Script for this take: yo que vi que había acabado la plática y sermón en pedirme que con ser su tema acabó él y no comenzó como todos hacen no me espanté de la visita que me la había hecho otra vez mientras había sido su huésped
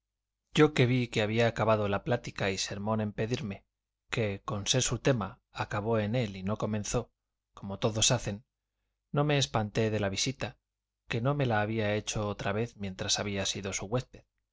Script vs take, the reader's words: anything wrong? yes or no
yes